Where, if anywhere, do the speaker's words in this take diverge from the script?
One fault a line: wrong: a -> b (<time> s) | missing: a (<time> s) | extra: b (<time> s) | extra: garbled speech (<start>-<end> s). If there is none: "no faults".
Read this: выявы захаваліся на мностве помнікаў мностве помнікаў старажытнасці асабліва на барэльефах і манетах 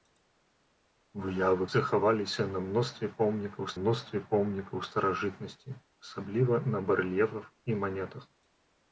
no faults